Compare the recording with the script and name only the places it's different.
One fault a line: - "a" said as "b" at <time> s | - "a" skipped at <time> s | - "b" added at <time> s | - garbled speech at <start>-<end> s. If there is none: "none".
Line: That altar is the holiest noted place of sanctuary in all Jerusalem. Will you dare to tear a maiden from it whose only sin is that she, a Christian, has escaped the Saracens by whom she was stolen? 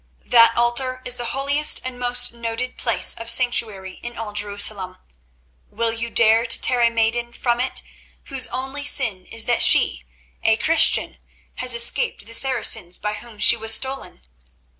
- "and most" added at 1.8 s